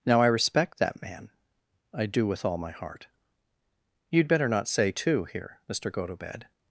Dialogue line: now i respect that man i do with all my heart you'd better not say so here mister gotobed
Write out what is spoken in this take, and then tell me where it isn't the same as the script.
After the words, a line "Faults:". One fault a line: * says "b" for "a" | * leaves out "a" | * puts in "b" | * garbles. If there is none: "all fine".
now i respect that man i do with all my heart you'd better not say too here mister gotobed
Faults:
* says "too" for "so"